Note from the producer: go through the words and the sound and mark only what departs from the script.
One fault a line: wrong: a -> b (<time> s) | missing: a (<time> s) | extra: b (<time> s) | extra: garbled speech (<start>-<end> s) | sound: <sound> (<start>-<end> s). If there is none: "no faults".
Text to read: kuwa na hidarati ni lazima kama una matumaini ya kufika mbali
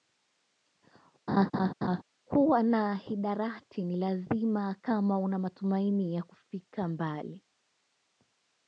sound: laugh (1.3-2.0 s)